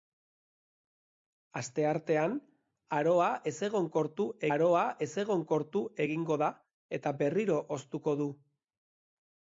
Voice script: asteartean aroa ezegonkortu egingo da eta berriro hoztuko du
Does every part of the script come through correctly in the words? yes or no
no